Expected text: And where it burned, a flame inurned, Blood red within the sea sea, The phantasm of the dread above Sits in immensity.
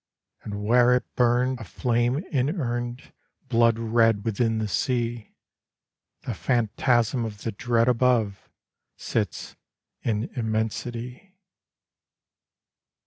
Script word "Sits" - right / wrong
right